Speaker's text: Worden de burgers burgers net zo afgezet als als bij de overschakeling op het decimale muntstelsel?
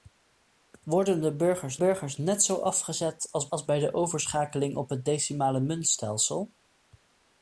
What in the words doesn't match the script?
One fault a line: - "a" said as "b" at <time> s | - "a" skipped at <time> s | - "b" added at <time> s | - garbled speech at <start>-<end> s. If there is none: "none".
none